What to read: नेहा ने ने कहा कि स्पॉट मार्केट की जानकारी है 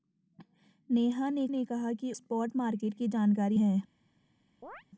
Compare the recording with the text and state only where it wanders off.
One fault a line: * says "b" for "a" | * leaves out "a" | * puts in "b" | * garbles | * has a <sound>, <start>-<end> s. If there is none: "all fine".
* has a chirp, 4.6-4.8 s